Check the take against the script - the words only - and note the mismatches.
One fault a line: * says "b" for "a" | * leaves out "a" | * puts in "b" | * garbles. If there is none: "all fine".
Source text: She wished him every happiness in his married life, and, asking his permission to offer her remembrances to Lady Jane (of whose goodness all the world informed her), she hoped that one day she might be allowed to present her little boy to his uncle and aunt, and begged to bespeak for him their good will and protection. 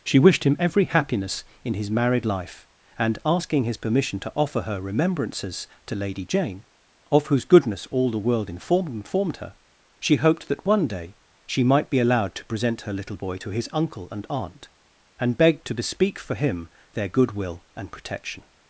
* puts in "informed"